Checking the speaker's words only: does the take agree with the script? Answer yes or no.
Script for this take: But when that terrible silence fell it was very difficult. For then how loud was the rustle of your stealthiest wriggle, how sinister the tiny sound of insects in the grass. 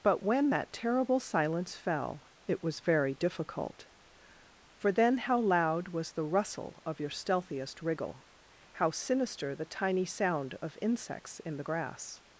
yes